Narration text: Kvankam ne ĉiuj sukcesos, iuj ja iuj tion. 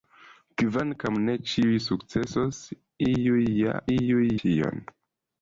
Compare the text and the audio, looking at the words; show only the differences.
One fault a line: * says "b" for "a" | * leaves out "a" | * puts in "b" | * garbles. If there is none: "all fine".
all fine